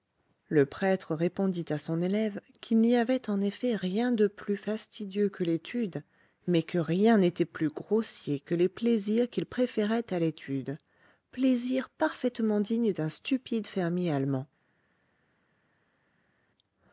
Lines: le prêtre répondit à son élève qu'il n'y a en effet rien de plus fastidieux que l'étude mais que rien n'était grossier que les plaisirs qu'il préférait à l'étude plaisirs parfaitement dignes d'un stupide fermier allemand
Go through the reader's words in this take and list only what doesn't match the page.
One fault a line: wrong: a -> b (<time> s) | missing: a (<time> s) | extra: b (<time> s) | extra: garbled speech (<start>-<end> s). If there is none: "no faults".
wrong: a -> avait (3.0 s)
extra: plus (7.5 s)